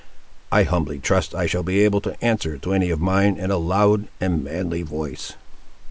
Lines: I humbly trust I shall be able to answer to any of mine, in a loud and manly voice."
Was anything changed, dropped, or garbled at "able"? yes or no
no